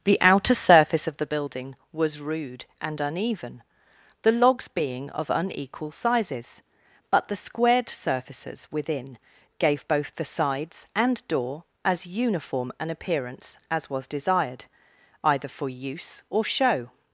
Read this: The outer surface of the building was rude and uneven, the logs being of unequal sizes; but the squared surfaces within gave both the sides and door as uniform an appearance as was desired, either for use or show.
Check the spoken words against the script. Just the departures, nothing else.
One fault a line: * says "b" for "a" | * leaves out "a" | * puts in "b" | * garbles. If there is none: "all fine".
all fine